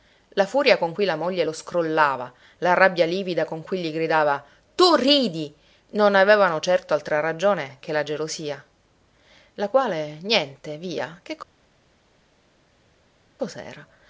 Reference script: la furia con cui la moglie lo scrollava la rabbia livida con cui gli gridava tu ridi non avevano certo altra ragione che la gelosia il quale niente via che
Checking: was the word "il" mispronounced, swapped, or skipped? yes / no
yes